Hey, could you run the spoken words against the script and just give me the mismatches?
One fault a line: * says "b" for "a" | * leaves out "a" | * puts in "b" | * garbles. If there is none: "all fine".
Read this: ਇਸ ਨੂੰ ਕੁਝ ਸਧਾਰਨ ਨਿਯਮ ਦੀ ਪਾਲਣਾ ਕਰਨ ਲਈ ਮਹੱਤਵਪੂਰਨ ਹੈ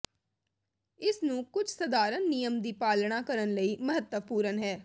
all fine